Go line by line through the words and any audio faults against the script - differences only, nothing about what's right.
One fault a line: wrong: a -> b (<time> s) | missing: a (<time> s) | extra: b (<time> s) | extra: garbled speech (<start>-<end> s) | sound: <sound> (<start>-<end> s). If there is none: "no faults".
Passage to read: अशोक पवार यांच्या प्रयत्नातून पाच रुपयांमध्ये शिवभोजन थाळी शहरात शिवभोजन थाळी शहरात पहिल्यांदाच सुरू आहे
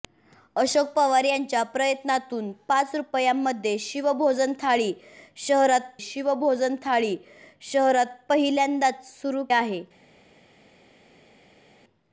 no faults